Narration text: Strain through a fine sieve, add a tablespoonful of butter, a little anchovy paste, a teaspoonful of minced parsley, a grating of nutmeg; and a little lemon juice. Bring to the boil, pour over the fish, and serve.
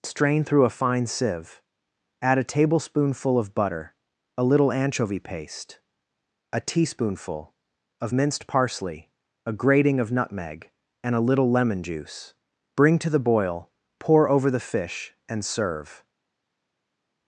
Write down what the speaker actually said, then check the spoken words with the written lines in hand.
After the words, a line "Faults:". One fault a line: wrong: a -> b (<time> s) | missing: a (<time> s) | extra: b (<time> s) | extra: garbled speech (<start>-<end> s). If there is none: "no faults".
Strain through a fine sieve, add a tablespoonful of butter, a little anchovy paste, a teaspoonful of minced parsley, a grating of nutmeg; and a little lemon juice. Bring to the boil, pour over the fish, and serve.
Faults:
no faults